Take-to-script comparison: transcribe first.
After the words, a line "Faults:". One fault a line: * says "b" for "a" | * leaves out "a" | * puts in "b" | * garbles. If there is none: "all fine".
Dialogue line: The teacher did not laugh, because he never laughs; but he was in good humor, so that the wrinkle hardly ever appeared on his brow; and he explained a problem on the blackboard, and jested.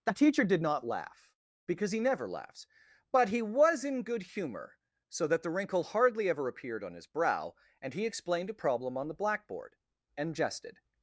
The teacher did not laugh, because he never laughs; but he was in good humor, so that the wrinkle hardly ever appeared on his brow; and he explained a problem on the blackboard, and jested.
Faults:
all fine